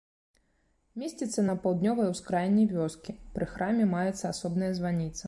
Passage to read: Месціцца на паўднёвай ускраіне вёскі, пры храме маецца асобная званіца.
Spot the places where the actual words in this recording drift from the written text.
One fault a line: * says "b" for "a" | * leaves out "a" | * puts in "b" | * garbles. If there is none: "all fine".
all fine